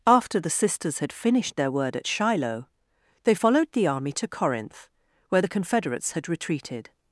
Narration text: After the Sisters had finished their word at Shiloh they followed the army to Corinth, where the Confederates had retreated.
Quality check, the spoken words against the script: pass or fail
pass